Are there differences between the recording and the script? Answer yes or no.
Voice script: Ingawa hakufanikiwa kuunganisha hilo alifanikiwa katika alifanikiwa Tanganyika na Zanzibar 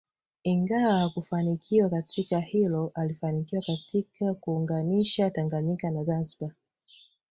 yes